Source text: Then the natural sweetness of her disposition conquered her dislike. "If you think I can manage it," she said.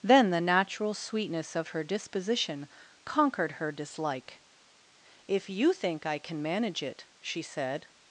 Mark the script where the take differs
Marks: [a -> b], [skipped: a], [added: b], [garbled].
Then the natural sweetness of her disposition conquered her dislike. "If you think I can manage it," she said.